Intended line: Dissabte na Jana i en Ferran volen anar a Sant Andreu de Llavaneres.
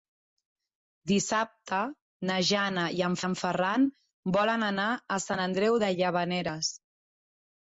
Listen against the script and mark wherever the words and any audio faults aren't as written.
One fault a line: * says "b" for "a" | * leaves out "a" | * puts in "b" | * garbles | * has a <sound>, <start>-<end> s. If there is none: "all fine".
* puts in "en"